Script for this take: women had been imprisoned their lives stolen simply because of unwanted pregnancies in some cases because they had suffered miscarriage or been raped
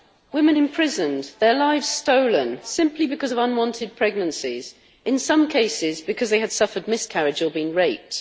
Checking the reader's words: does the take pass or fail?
fail